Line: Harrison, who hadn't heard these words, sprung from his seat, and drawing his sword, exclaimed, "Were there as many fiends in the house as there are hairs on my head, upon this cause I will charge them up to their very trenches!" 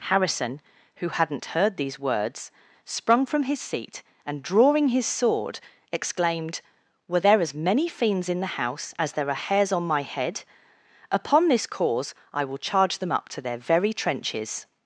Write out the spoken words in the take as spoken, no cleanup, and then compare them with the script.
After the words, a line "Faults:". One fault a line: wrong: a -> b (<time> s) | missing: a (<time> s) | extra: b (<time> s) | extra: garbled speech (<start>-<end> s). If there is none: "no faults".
Harrison, who hadn't heard these words, sprung from his seat, and drawing his sword, exclaimed, "Were there as many fiends in the house as there are hairs on my head, upon this cause I will charge them up to their very trenches!"
Faults:
no faults